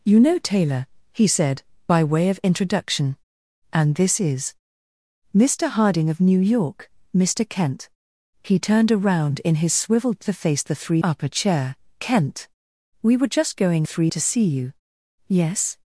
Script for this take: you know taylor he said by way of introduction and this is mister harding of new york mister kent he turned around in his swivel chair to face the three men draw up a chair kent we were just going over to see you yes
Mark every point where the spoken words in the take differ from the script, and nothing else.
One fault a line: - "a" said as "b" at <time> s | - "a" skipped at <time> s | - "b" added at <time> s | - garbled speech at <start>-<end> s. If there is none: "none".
- "chair" skipped at 10.2 s
- "men draw" skipped at 11.0 s
- "over" said as "three" at 13.8 s